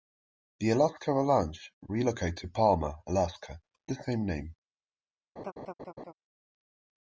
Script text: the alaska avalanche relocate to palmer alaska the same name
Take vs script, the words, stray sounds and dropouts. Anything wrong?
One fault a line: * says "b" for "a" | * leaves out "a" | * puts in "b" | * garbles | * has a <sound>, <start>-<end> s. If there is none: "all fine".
* has a laugh, 5.4-6.1 s